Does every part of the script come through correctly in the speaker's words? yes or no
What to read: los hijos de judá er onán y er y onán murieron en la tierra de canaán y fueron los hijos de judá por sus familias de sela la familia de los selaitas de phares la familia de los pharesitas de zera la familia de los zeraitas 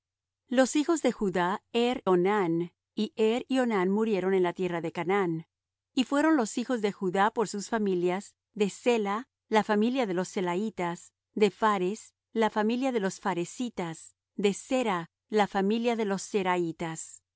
yes